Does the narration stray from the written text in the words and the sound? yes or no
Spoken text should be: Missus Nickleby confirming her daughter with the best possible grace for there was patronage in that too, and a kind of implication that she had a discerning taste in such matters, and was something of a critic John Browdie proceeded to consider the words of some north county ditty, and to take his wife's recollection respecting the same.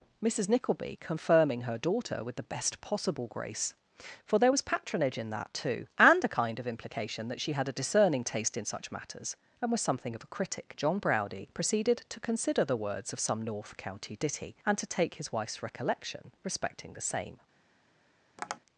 yes